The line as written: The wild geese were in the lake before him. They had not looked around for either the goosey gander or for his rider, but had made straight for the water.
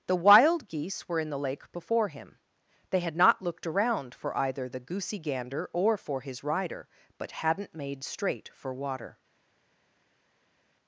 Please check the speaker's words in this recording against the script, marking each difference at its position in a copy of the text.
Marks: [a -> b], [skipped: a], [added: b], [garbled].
The wild geese were in the lake before him. They had not looked around for either the goosey gander or for his rider, but [had -> hadn't] made straight for [skipped: the] water.